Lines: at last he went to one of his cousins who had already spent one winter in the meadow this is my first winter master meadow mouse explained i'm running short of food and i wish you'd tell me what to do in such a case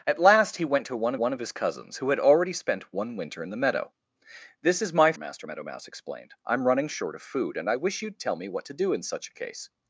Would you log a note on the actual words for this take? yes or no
yes